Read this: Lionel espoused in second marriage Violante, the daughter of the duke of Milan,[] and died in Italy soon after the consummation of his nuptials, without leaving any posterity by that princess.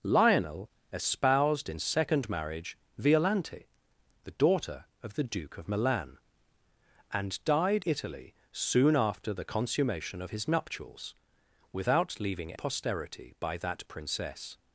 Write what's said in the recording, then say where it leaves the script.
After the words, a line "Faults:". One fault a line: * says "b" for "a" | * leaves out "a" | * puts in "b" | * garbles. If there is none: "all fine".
Lionel espoused in second marriage Violante, the daughter of the duke of Milan,[] and died Italy soon after the consummation of his nuptials, without leaving posterity by that princess.
Faults:
* leaves out "in"
* leaves out "any"